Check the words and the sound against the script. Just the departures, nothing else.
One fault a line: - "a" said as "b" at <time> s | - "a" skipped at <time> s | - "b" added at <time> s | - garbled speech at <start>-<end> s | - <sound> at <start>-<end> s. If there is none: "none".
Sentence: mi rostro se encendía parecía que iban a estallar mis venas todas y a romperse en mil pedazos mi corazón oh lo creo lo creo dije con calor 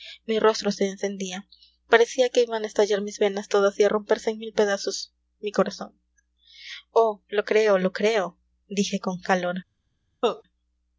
- cough at 10.2-10.4 s